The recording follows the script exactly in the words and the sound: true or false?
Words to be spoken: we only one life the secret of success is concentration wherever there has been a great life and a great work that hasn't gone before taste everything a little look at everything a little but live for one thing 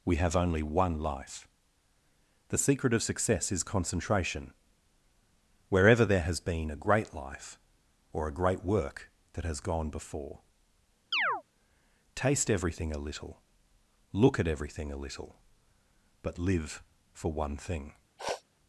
false